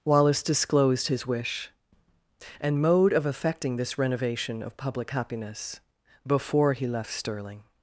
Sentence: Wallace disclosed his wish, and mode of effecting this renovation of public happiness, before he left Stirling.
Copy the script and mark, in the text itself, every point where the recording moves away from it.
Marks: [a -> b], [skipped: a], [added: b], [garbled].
Wallace disclosed his wish, and mode of effecting this renovation of public happiness, before he left Stirling.